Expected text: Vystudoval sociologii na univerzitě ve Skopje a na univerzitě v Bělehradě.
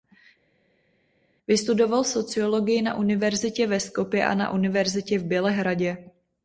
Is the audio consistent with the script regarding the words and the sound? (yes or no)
yes